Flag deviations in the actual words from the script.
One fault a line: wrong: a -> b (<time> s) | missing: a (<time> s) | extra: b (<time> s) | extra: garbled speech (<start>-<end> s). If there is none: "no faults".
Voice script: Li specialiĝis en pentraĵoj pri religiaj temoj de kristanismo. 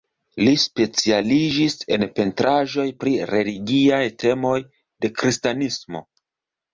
no faults